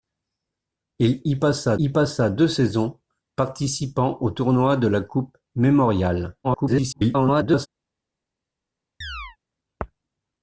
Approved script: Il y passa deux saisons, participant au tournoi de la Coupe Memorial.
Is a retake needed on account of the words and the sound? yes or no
yes